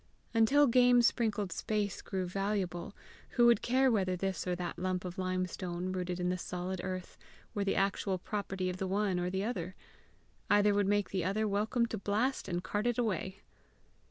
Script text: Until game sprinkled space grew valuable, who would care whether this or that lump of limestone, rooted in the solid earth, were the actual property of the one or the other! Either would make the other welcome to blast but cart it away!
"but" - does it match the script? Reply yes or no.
no